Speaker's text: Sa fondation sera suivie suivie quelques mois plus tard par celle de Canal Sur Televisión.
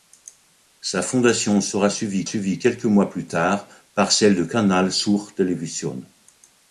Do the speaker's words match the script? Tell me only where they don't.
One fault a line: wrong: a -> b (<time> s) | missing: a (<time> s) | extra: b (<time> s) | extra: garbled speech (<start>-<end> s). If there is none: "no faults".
no faults